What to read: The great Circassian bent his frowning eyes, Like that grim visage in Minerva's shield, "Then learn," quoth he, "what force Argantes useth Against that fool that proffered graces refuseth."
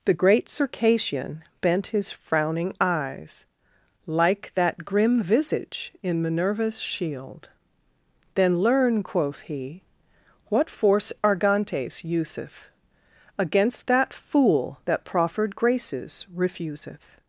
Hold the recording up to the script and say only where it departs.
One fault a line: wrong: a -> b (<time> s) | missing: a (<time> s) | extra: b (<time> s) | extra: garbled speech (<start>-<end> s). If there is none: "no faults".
no faults